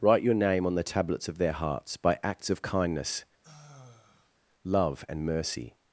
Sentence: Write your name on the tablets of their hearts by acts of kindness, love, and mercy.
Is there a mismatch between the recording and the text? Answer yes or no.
no